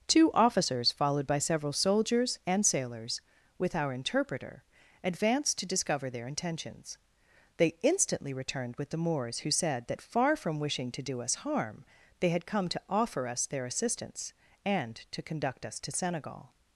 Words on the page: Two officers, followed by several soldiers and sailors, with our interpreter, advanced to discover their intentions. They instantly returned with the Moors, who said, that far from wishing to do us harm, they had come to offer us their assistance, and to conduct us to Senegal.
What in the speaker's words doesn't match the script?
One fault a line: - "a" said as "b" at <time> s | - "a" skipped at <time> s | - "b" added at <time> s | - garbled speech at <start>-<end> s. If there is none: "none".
none